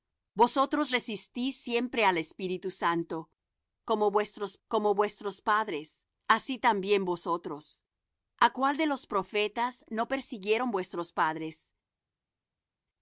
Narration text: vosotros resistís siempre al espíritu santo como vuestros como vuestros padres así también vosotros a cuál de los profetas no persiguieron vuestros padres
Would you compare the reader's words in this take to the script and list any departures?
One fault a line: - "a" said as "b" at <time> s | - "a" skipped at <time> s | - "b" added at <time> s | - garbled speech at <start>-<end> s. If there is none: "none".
none